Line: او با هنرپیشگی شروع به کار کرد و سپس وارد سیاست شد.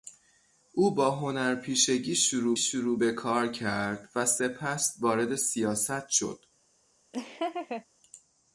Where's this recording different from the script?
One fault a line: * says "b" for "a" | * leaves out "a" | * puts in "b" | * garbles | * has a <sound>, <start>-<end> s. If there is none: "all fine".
* puts in "شروع"
* has a laugh, 7.1-7.9 s